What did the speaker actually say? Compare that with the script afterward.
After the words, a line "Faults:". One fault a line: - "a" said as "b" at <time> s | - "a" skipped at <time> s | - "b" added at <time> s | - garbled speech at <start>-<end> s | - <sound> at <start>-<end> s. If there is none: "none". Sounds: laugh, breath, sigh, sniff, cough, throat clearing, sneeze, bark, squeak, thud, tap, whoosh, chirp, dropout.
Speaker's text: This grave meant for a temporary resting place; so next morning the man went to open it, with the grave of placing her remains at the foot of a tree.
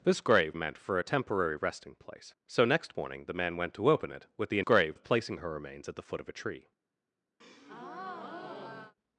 This grave meant for a temporary resting place; so next morning the man went to open it, with the grave of placing her remains at the foot of a tree.
Faults:
- breath at 7.4-9.0 s